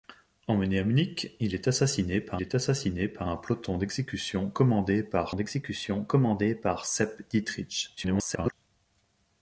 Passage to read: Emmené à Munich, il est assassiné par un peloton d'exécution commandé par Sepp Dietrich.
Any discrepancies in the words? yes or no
yes